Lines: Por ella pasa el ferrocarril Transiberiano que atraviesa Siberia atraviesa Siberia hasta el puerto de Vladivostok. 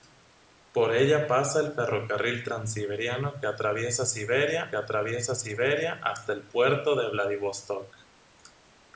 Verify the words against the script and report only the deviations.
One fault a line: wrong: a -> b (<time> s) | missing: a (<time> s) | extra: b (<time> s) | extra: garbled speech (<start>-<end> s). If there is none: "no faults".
no faults